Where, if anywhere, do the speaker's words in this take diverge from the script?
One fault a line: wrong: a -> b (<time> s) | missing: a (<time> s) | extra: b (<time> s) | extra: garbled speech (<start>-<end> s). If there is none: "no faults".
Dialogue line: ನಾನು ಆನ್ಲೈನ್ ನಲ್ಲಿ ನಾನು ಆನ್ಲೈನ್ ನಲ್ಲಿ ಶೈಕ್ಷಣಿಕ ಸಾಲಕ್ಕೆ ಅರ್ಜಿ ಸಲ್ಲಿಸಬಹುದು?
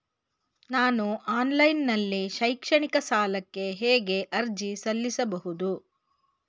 missing: ನಾನು ಆನ್ಲೈನ್ ನಲ್ಲಿ (2.3 s)
extra: ಹೇಗೆ (3.7 s)